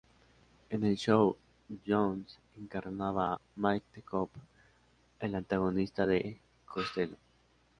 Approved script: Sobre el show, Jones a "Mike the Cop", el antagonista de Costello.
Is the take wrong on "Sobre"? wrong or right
wrong